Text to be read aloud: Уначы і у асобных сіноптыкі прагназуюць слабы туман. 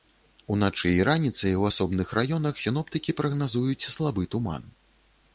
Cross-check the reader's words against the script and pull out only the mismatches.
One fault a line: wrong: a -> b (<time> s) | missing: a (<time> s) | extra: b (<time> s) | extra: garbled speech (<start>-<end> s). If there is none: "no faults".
extra: раніцай (1.1 s)
extra: раёнах (2.2 s)